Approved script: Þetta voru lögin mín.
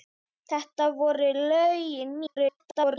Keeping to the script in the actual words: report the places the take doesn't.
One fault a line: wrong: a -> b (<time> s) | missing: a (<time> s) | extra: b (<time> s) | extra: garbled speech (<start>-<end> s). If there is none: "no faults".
extra: garbled speech (2.3-3.0 s)